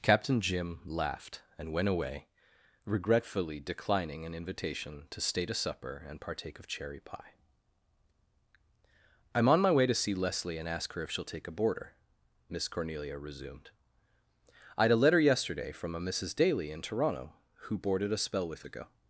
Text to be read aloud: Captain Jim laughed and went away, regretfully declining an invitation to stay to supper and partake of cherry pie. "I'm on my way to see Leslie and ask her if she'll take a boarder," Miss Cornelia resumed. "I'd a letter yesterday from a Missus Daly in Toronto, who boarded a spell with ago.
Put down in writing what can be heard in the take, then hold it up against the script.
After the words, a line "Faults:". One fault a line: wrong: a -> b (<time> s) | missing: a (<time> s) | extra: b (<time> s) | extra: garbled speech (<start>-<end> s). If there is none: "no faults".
Captain Jim laughed and went away, regretfully declining an invitation to stay to supper and partake of cherry pie. "I'm on my way to see Leslie and ask her if she'll take a boarder," Miss Cornelia resumed. "I'd a letter yesterday from a Missus Daly in Toronto, who boarded a spell with ago.
Faults:
no faults